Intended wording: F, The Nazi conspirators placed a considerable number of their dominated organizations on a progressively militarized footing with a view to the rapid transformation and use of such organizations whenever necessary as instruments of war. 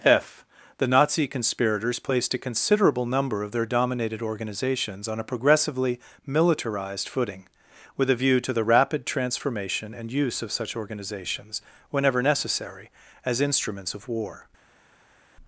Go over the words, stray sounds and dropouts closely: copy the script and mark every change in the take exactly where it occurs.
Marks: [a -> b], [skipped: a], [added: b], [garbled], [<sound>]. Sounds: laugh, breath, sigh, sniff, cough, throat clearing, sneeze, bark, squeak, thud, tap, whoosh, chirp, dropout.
F, The Nazi conspirators placed a considerable number of their dominated organizations on a progressively militarized footing with a view to the rapid transformation and use of such organizations whenever necessary as instruments of war.